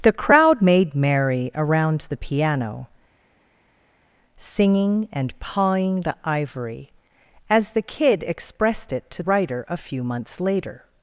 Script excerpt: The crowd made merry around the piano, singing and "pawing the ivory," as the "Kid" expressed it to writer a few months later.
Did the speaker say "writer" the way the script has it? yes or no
yes